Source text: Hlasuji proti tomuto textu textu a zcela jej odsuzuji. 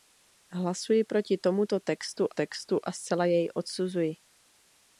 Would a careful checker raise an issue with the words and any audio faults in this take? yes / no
no